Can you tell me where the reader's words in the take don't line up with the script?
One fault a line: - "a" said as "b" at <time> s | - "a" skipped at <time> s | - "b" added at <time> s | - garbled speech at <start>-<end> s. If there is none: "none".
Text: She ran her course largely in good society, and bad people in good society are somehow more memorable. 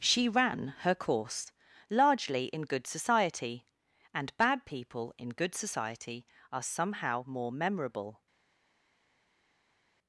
none